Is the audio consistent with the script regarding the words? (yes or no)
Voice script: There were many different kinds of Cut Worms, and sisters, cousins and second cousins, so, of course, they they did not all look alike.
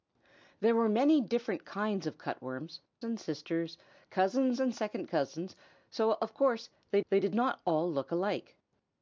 yes